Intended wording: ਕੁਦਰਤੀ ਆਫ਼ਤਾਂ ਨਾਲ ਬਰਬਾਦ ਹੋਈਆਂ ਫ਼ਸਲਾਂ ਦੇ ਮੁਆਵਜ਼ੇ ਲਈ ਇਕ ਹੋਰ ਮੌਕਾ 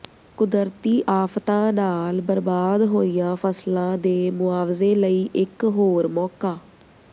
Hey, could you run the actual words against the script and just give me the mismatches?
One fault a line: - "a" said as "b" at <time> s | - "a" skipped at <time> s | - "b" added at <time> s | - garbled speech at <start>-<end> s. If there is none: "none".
none